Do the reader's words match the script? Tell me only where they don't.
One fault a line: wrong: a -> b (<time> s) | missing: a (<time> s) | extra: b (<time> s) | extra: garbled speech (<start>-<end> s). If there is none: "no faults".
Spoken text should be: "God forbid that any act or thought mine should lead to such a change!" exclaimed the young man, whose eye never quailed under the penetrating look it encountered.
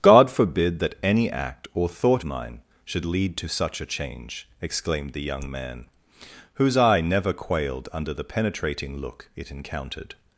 no faults